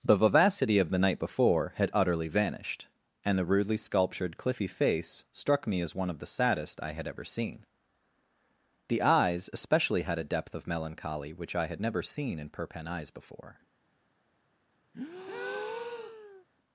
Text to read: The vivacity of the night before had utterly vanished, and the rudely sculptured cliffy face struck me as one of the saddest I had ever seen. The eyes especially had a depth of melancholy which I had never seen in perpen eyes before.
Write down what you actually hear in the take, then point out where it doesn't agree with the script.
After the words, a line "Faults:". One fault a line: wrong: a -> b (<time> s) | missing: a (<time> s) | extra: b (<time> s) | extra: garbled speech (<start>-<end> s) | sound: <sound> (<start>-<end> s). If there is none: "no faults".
The vivacity of the night before had utterly vanished, and the rudely sculptured cliffy face struck me as one of the saddest I had ever seen. The eyes especially had a depth of melancholy which I had never seen in perpen eyes before.
Faults:
sound: breath (14.9-16.4 s)